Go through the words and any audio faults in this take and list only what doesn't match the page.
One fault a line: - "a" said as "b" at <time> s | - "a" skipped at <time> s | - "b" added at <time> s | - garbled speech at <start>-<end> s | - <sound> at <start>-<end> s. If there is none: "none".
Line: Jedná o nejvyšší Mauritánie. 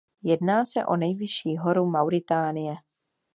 - "se" added at 0.6 s
- "horu" added at 1.6 s